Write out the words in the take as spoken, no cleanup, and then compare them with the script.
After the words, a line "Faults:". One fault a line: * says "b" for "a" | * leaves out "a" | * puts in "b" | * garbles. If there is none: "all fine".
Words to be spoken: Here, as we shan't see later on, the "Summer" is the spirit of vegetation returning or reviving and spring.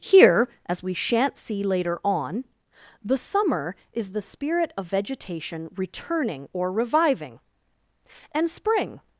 Here, as we shan't see later on, the "Summer" is the spirit of vegetation returning or reviving and spring.
Faults:
all fine